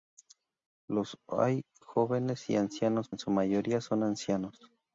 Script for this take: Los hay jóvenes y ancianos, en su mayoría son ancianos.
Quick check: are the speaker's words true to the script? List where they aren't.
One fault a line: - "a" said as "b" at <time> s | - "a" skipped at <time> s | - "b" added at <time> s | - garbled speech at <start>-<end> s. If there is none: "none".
none